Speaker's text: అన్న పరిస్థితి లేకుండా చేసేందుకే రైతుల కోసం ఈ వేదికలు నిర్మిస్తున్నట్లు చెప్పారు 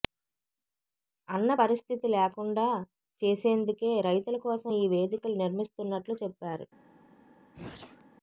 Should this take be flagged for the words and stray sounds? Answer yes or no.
yes